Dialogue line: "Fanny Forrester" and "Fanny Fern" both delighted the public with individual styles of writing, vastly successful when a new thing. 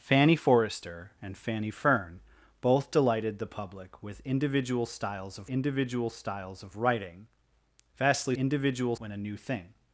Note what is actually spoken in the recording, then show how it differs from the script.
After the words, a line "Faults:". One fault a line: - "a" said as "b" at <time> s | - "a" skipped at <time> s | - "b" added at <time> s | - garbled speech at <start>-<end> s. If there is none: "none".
"Fanny Forrester" and "Fanny Fern" both delighted the public with individual styles of individual styles of writing, vastly individual when a new thing.
Faults:
- "individual styles of" added at 5.5 s
- "successful" said as "individual" at 8.3 s